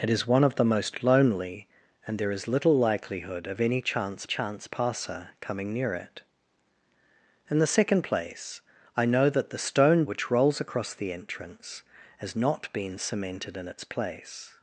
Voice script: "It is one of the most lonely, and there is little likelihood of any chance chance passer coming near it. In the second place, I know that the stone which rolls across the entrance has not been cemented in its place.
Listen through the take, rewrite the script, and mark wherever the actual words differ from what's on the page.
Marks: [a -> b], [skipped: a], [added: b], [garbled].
"It is one of the most lonely, and there is little likelihood of any chance chance passer coming near it. In the second place, I know that the stone which rolls across the entrance has not been cemented in its place.